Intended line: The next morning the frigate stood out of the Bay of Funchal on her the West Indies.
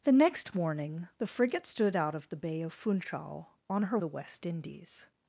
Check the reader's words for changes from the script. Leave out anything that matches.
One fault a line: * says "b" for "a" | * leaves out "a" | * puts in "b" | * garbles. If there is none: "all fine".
all fine